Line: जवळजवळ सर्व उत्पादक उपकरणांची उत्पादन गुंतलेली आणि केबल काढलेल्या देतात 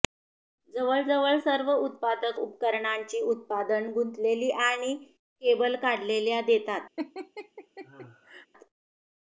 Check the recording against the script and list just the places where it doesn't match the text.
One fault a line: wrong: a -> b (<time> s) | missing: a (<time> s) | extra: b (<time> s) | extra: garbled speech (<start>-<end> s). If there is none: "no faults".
no faults